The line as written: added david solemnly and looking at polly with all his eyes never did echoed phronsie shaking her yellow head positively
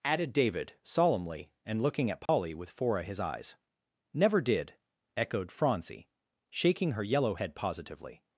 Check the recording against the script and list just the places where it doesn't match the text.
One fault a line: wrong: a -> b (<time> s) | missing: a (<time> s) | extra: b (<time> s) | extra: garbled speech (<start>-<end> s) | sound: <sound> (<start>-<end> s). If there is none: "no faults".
sound: dropout (2.3-2.3 s)
wrong: all -> fora (2.7 s)